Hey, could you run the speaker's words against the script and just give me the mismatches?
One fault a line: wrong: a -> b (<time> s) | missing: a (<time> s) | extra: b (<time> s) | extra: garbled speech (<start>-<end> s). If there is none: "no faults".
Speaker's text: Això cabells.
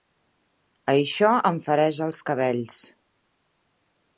extra: em fereix els (1.5 s)